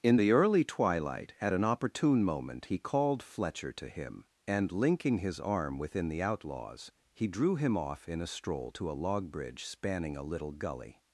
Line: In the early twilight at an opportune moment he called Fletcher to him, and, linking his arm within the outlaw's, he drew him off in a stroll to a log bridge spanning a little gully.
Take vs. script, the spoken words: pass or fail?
pass